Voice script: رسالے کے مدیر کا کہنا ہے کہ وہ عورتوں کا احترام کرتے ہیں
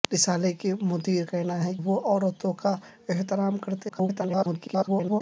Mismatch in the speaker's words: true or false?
true